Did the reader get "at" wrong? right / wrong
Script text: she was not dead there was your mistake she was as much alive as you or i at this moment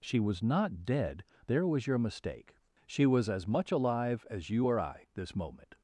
wrong